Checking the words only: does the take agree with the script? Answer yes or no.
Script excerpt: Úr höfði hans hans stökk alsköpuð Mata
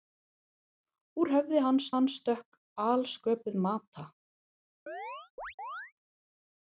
yes